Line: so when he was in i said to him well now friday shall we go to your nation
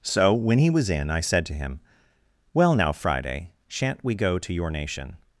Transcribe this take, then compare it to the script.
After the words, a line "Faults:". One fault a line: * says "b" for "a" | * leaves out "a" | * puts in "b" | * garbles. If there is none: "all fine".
so when he was in i said to him well now friday shan't we go to your nation
Faults:
* says "shan't" for "shall"